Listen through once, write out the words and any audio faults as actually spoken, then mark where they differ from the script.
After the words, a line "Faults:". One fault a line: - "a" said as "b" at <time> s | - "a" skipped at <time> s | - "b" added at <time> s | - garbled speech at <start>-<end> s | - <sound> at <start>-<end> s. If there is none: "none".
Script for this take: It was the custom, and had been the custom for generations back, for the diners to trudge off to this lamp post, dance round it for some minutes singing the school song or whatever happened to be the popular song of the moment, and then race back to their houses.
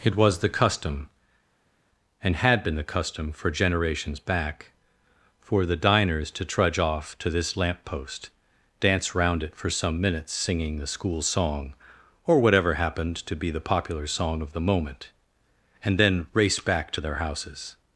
It was the custom, and had been the custom for generations back, for the diners to trudge off to this lamp post, dance round it for some minutes singing the school song or whatever happened to be the popular song of the moment, and then race back to their houses.
Faults:
none